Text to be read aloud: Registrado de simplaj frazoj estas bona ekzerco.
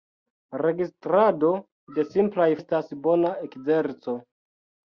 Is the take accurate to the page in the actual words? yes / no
no